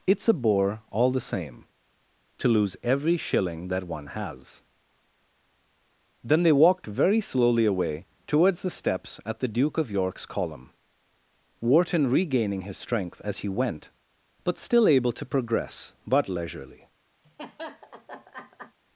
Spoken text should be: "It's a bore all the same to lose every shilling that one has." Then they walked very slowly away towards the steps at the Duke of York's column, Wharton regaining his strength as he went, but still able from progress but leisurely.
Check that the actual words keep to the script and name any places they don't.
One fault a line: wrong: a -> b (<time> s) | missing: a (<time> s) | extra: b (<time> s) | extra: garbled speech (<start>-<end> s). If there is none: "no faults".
wrong: from -> to (15.1 s)